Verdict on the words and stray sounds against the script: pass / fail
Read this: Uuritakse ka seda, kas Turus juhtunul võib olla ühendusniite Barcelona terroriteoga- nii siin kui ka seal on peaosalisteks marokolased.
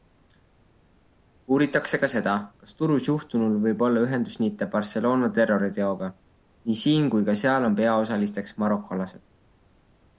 pass